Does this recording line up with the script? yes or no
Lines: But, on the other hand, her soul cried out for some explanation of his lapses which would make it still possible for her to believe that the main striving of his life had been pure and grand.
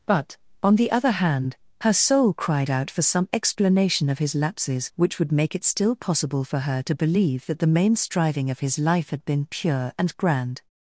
yes